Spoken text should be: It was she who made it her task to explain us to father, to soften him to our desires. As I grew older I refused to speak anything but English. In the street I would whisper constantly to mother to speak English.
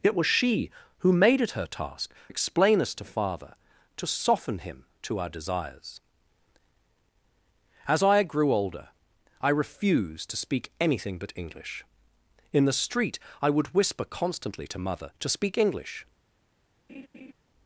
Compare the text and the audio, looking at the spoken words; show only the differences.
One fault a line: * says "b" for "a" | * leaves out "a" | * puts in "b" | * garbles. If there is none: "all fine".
* leaves out "to"